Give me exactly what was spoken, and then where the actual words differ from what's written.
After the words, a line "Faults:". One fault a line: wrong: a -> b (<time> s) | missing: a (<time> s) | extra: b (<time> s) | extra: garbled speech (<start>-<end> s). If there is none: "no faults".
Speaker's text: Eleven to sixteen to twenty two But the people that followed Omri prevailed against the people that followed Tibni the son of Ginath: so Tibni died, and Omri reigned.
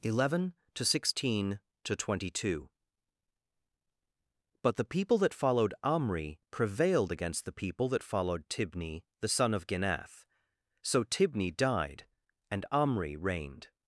Eleven to sixteen to twenty two But the people that followed Omri prevailed against the people that followed Tibni the son of Ginath: so Tibni died, and Omri reigned.
Faults:
no faults